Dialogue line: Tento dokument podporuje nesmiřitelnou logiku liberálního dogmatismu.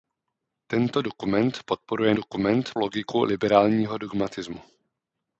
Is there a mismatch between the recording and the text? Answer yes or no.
yes